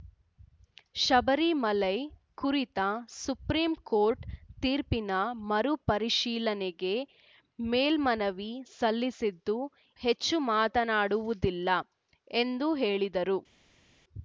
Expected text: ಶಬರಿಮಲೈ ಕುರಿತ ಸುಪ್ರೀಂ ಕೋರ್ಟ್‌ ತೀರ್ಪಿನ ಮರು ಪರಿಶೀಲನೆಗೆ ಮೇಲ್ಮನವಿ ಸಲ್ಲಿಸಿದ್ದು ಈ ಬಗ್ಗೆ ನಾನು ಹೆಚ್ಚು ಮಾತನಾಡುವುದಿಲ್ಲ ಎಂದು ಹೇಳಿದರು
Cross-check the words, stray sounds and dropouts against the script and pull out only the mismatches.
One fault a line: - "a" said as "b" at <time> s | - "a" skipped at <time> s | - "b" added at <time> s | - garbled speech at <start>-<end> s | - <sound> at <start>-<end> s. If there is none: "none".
- "ಈ ಬಗ್ಗೆ ನಾನು" skipped at 9.6 s